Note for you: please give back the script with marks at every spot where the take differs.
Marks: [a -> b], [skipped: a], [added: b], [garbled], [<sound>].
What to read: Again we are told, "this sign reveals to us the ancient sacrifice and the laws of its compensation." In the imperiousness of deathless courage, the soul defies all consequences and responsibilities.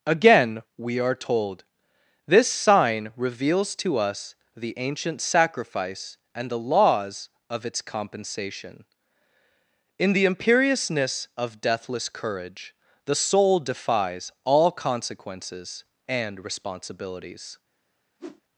Again we are told, "this sign reveals to us the ancient sacrifice and the laws of its compensation." In the imperiousness of deathless courage, the soul defies all consequences and responsibilities. [whoosh]